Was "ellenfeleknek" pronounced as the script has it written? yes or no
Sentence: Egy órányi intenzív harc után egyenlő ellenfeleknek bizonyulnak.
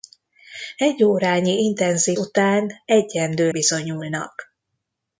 no